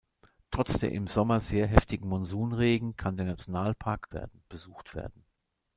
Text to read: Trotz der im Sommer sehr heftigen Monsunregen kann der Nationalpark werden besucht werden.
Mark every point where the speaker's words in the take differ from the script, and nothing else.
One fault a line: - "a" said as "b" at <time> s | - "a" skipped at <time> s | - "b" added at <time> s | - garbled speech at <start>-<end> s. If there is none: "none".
none